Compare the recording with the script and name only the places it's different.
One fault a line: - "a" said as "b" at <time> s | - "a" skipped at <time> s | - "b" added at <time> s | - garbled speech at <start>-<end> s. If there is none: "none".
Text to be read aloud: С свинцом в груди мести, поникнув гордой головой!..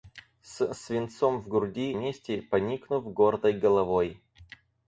none